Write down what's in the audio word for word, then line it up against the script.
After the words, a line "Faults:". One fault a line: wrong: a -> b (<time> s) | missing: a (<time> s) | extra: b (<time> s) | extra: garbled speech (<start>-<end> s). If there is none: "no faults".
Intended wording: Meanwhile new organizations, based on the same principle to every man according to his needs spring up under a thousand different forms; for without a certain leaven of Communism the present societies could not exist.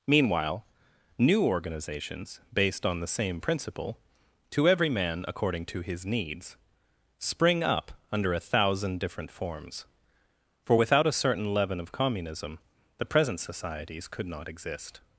Meanwhile new organizations, based on the same principle to every man according to his needs spring up under a thousand different forms; for without a certain leaven of Communism the present societies could not exist.
Faults:
no faults